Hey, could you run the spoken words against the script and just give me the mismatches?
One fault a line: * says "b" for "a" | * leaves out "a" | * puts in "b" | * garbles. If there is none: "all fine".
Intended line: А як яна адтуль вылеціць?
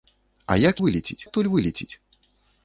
* says "вылеціць" for "яна"